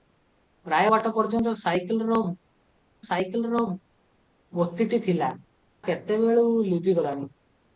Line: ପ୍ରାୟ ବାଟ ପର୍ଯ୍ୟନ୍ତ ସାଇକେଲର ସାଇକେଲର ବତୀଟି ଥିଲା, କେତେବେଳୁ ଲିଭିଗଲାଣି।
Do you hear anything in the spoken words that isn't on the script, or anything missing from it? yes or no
no